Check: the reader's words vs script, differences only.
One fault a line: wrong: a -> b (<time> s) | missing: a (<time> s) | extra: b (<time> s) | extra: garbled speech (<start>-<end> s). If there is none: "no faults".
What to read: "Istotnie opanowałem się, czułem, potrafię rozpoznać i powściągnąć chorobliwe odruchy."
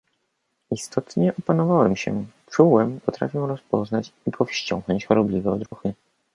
no faults